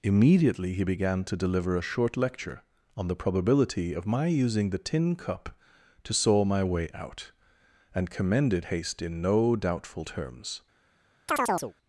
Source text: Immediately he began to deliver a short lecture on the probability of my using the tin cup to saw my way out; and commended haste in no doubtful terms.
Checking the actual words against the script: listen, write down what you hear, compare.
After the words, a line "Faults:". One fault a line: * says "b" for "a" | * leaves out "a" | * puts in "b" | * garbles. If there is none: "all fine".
Immediately he began to deliver a short lecture on the probability of my using the tin cup to saw my way out; and commended haste in no doubtful terms.
Faults:
all fine